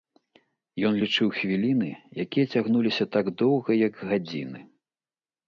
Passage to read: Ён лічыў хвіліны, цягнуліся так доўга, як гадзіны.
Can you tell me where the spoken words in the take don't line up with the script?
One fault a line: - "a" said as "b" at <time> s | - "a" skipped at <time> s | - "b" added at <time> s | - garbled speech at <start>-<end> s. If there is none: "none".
- "якія" added at 2.3 s